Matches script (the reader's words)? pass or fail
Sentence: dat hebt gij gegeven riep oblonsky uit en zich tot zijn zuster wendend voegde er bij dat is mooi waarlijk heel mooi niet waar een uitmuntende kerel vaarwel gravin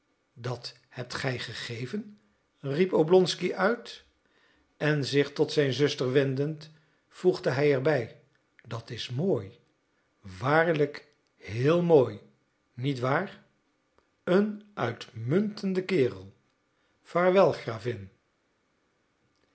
fail